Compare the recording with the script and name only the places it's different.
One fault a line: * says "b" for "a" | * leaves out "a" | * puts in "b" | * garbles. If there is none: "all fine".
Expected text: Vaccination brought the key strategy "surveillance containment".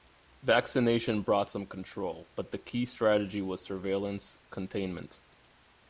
* puts in "some control but"
* puts in "was"